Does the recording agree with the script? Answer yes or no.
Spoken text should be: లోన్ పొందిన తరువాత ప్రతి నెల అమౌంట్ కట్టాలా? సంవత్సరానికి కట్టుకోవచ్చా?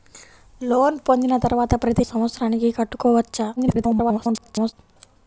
no